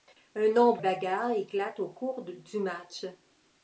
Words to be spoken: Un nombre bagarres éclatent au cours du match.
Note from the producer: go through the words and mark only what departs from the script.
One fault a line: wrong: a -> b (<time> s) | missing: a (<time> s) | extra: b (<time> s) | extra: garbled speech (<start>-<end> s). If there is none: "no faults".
no faults